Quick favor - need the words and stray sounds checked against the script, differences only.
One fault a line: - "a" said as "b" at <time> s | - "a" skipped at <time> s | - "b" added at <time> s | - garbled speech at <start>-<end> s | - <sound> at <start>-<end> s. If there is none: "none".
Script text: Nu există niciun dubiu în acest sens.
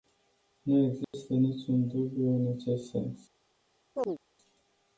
- dropout at 1.0-1.1 s
- chirp at 4.0-4.2 s